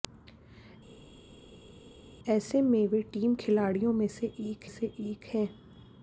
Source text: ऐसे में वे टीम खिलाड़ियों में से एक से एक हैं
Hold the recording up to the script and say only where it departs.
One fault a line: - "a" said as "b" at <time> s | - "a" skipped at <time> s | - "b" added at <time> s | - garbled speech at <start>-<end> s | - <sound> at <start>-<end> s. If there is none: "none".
none